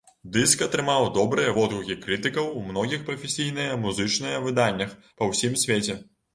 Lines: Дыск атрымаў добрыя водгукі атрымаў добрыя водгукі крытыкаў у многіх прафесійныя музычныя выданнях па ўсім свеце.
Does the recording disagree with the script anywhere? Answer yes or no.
yes